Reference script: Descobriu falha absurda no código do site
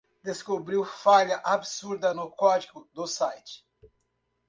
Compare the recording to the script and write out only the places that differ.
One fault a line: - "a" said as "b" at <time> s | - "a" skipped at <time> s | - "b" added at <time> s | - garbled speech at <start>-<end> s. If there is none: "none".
none